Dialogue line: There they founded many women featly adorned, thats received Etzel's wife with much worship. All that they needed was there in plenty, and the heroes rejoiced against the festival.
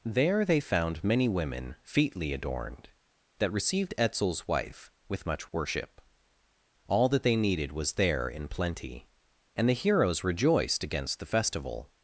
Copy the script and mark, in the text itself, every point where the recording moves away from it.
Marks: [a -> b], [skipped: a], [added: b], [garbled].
There they [founded -> found] many women featly adorned, [thats -> that] received Etzel's wife with much worship. All that they needed was there in plenty, and the heroes rejoiced against the festival.